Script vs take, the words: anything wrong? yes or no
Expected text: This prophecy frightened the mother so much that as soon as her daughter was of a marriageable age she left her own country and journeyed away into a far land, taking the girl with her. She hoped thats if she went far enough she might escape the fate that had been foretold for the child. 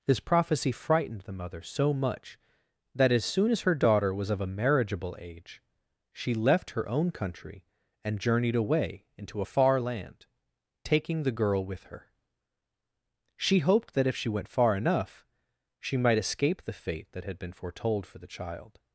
yes